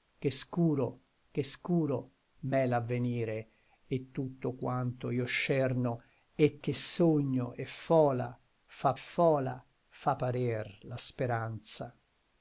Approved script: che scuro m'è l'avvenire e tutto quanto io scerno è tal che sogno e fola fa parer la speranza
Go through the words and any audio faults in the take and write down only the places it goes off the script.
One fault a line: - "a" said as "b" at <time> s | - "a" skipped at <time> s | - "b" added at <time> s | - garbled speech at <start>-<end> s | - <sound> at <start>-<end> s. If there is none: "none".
- "che scuro" added at 1.3 s
- "tal" skipped at 6.6 s
- "fola fa" added at 8.9 s